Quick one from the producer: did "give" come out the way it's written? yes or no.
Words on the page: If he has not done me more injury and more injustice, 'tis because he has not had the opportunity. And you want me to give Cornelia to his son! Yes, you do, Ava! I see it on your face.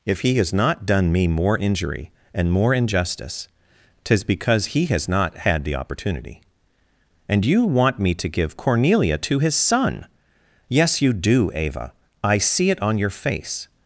yes